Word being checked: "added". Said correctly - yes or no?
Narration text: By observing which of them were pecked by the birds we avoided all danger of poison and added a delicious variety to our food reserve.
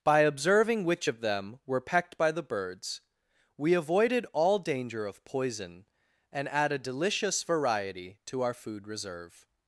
no